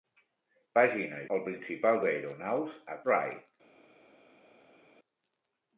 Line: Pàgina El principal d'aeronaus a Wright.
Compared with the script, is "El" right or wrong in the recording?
right